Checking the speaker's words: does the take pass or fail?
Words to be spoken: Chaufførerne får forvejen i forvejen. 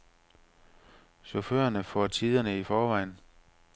fail